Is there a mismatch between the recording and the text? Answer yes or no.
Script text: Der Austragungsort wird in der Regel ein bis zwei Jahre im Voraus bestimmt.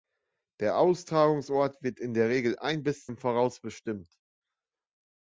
yes